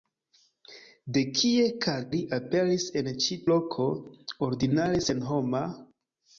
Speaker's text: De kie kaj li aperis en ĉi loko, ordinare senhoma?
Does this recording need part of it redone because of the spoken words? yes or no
no